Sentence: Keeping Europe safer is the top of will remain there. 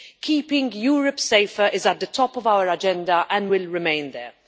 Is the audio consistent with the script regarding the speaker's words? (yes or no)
no